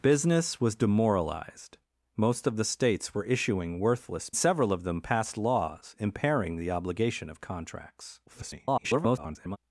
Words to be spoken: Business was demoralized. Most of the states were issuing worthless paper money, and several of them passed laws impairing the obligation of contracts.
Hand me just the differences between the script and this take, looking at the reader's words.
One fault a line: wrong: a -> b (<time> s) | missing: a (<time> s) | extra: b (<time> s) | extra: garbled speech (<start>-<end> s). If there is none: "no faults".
missing: paper money and (4.3 s)
extra: garbled speech (8.3-9.6 s)